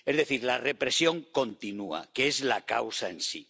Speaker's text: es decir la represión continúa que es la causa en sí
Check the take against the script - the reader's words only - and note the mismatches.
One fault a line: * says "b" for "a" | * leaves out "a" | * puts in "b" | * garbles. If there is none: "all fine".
all fine